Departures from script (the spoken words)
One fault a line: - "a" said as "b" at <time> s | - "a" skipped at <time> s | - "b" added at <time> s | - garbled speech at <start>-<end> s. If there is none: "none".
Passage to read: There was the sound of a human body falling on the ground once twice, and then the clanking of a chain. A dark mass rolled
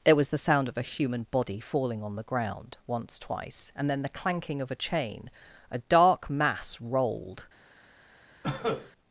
none